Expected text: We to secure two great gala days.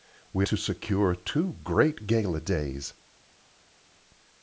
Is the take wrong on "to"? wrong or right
right